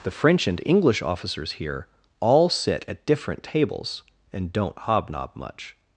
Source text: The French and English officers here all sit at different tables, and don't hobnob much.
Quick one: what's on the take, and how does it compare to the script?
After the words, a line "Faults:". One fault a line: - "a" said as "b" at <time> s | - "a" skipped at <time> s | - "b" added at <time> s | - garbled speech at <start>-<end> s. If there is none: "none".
The French and English officers here all sit at different tables, and don't hobnob much.
Faults:
none